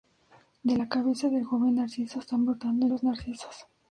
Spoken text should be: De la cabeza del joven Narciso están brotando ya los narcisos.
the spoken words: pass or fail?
fail